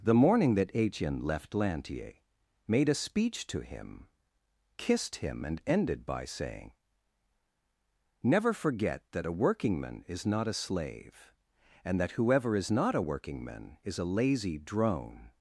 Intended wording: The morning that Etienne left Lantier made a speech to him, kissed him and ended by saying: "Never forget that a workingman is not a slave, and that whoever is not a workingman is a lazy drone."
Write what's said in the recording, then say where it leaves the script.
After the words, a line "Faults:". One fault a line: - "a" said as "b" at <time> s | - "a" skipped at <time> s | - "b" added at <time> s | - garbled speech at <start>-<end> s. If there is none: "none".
The morning that Etienne left Lantier made a speech to him, kissed him and ended by saying: "Never forget that a workingman is not a slave, and that whoever is not a workingman is a lazy drone."
Faults:
none